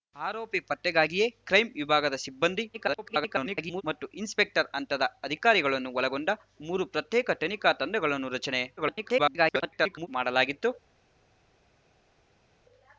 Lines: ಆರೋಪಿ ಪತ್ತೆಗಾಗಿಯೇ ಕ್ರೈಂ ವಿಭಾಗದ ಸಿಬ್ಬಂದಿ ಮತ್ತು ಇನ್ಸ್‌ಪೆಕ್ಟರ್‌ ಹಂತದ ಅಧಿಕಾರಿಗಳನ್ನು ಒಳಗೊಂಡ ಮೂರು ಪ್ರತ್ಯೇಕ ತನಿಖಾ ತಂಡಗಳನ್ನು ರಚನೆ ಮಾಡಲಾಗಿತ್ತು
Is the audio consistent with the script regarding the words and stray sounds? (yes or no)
no